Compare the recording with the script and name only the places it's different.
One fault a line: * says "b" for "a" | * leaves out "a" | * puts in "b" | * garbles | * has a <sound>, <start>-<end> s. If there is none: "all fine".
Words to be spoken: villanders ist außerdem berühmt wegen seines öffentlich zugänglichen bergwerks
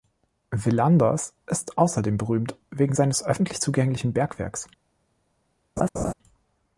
* has a laugh, 5.8-6.1 s